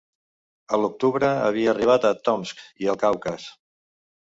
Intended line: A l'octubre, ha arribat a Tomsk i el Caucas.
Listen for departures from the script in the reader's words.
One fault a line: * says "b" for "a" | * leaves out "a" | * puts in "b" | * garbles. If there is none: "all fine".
* says "havia" for "ha"